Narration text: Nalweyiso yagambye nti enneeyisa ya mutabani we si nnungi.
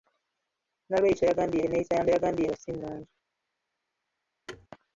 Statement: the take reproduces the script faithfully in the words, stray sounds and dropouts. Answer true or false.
false